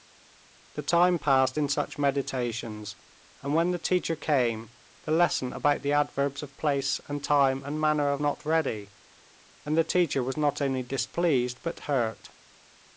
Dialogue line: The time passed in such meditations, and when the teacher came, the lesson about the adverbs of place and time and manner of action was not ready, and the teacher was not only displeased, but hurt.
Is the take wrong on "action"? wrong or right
wrong